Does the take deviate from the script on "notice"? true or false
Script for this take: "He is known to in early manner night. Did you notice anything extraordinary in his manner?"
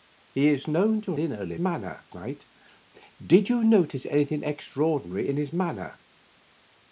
false